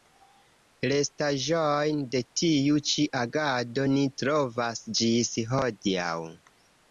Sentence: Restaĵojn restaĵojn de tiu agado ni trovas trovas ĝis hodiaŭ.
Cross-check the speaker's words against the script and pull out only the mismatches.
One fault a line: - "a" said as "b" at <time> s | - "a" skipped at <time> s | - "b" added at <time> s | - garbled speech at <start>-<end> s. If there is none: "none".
- "restaĵojn" skipped at 2.0 s
- "ĉi" added at 2.9 s
- "trovas" skipped at 4.8 s